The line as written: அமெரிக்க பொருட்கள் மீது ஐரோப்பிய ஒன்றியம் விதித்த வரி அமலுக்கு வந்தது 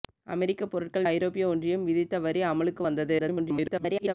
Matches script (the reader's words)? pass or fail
fail